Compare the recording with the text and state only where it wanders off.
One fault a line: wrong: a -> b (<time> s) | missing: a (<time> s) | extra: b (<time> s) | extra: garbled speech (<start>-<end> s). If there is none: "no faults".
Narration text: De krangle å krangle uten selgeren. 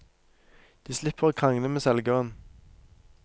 wrong: krangle -> slipper (1.0 s)
wrong: uten -> med (1.7 s)